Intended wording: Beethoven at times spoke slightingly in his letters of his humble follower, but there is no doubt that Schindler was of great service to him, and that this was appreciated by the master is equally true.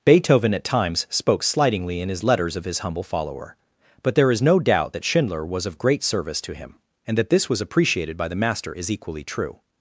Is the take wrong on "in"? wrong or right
right